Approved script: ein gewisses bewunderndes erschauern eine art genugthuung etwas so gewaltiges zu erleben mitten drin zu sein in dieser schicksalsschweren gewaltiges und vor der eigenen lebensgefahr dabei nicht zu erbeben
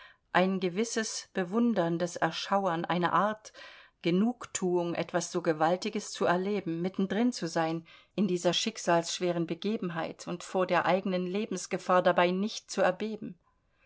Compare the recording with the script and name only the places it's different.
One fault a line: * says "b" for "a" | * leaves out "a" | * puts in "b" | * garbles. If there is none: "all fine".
* says "begebenheit" for "gewaltiges"